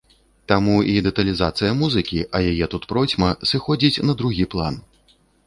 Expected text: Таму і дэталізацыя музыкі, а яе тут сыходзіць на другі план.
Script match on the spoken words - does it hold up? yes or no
no